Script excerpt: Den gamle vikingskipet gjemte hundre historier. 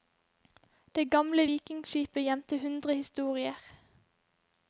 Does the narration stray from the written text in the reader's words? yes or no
yes